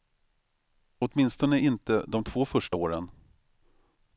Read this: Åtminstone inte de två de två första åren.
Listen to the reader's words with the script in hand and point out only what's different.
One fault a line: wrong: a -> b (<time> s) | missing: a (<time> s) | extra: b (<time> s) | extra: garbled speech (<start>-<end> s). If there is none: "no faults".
missing: de två (2.4 s)